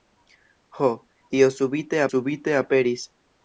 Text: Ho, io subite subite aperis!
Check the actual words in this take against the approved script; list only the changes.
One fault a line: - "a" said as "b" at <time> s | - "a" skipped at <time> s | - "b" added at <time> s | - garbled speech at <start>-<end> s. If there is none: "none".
none